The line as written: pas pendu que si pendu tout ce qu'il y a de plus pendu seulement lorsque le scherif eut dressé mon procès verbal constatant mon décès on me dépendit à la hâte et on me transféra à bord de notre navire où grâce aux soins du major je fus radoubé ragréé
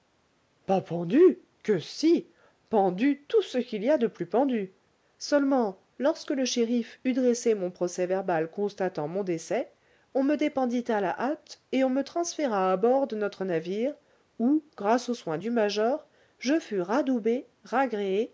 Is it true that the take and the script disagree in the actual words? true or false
false